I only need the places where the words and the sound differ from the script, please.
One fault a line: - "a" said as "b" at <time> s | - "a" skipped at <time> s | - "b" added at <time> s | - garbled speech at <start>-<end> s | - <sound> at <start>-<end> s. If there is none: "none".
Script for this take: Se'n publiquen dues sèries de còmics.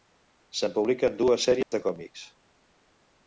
- dropout at 1.6-1.7 s